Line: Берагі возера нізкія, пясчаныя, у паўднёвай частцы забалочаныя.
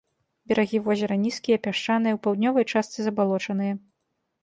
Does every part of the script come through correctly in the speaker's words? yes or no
yes